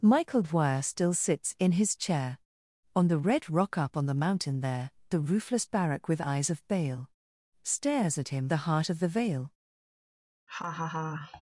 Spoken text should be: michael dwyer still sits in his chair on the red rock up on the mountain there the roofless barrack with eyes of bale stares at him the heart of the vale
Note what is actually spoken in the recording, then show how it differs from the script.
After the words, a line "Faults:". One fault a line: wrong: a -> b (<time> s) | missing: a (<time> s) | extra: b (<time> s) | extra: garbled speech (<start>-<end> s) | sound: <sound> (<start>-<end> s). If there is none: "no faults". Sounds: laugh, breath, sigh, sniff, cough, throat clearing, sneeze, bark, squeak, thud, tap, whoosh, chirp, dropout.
michael dwyer still sits in his chair on the red rock up on the mountain there the roofless barrack with eyes of bale stares at him the heart of the vale
Faults:
sound: laugh (10.5-11.4 s)